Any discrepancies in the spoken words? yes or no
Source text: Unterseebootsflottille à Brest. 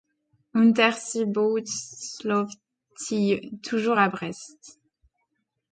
yes